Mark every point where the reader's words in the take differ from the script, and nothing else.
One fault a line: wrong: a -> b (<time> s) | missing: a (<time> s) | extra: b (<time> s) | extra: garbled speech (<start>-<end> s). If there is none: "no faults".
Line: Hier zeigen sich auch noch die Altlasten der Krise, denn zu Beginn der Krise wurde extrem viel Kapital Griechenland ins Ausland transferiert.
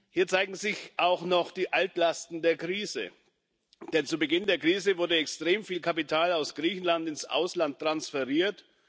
extra: aus (6.3 s)